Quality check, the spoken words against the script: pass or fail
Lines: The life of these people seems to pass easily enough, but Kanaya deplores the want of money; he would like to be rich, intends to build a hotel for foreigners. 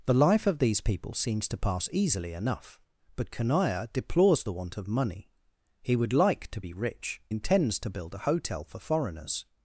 pass